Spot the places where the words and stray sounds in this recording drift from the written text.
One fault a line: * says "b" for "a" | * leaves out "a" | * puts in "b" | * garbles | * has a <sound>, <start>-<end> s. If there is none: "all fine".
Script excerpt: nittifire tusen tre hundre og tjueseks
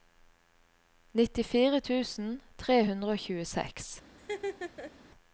* has a laugh, 4.2-4.9 s